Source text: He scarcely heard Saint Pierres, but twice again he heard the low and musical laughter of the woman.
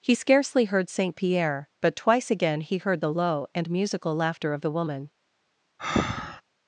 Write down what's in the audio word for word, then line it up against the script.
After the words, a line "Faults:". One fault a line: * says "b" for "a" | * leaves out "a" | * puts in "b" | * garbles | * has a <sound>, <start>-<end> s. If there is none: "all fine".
He scarcely heard Saint Pierre, but twice again he heard the low and musical laughter of the woman.
Faults:
* says "Pierre" for "Pierres"
* has a breath, 5.8-6.4 s